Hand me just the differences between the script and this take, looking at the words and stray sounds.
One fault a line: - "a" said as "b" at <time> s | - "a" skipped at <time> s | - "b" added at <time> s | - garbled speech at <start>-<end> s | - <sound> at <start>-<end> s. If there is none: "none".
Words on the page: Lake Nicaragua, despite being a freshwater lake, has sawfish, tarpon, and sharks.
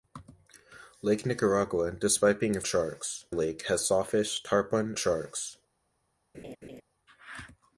- "freshwater" said as "sharks" at 2.7 s
- "and" skipped at 5.0 s
- laugh at 6.3-6.8 s